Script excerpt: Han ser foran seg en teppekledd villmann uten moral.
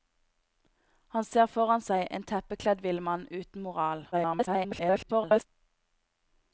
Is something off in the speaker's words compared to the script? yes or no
yes